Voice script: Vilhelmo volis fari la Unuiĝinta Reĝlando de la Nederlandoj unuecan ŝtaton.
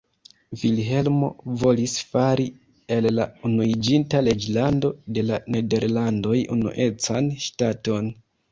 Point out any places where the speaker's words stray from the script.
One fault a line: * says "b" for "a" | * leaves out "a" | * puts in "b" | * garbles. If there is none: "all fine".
* puts in "el"